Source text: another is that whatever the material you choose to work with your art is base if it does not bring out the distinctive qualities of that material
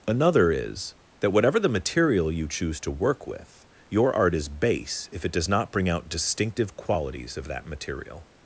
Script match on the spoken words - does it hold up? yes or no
no